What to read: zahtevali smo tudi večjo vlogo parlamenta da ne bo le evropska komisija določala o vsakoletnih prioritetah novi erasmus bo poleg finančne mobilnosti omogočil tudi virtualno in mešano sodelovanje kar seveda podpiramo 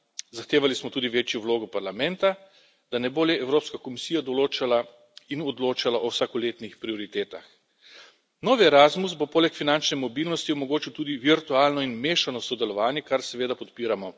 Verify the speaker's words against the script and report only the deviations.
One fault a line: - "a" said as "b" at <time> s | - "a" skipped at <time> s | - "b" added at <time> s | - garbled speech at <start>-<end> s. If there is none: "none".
- "in odločala" added at 5.3 s